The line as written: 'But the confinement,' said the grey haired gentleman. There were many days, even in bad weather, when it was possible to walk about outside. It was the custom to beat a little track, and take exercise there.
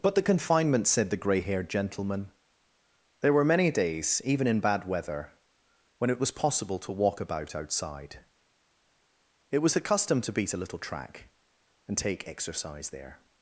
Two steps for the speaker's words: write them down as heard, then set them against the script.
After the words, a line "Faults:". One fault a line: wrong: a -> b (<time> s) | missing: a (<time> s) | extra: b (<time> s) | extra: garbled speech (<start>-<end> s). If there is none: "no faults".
'But the confinement,' said the grey haired gentleman. There were many days, even in bad weather, when it was possible to walk about outside. It was the custom to beat a little track, and take exercise there.
Faults:
no faults